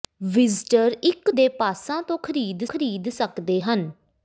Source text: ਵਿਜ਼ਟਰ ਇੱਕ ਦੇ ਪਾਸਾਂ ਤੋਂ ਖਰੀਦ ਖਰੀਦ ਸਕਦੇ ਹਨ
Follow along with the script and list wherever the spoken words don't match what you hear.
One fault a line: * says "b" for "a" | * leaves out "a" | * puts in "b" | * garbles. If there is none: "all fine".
all fine